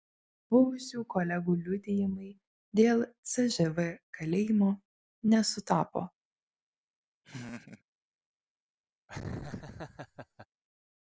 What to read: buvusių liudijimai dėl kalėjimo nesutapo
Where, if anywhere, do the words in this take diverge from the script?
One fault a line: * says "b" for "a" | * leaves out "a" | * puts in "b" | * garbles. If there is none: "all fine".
* puts in "kolegų"
* puts in "cžv"